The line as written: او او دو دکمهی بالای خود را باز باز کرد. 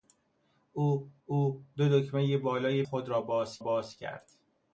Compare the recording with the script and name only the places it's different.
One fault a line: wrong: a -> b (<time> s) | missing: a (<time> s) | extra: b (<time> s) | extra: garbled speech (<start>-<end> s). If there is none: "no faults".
no faults